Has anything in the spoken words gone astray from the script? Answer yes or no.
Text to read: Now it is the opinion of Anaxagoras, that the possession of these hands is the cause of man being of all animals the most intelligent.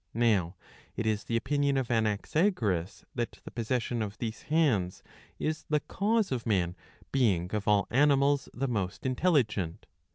no